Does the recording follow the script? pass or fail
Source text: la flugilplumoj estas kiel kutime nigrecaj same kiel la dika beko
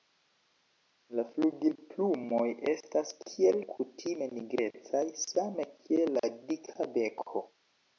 pass